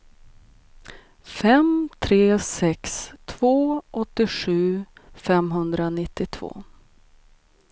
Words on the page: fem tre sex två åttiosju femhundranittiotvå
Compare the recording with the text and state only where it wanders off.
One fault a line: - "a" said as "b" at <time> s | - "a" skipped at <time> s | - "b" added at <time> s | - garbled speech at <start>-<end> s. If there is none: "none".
none